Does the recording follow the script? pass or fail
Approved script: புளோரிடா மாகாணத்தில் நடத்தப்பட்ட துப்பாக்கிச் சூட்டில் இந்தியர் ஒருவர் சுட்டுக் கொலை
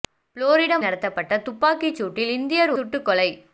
fail